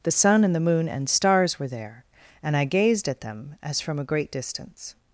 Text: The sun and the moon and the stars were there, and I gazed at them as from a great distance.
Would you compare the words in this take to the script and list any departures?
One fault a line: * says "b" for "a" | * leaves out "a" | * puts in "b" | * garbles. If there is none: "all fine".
* leaves out "the"